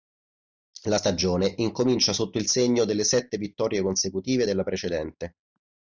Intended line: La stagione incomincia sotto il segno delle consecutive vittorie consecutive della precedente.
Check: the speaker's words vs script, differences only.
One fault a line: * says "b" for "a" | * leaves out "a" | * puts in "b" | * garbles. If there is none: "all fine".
* says "sette" for "consecutive"